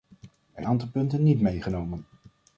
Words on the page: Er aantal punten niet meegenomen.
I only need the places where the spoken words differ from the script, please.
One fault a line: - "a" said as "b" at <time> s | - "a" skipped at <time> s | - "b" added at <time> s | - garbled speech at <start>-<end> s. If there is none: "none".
none